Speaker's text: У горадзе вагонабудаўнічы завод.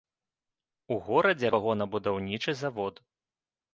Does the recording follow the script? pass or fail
pass